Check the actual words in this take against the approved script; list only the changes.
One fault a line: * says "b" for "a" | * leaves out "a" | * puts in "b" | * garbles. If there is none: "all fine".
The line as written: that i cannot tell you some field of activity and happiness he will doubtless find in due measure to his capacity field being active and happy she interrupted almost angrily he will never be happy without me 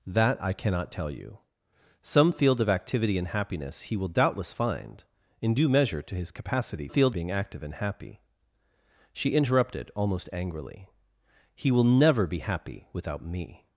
all fine